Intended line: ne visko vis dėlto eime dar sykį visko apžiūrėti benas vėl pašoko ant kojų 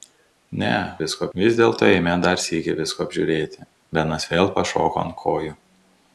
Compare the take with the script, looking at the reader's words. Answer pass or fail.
pass